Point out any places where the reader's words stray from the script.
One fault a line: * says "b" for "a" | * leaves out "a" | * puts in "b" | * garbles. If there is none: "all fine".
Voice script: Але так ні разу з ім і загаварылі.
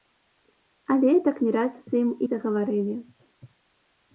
all fine